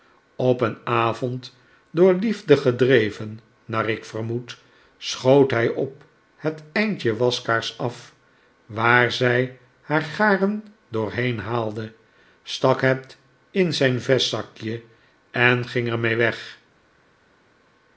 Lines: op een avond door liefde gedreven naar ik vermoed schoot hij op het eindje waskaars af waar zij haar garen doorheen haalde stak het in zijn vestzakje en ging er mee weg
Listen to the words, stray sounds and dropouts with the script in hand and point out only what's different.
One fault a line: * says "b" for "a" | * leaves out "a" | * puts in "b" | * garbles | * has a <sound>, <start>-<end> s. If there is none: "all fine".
all fine